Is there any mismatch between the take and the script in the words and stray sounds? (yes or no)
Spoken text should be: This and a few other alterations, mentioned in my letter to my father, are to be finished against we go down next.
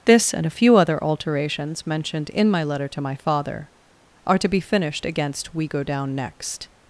no